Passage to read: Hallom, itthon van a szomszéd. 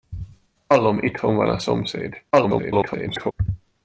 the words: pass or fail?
fail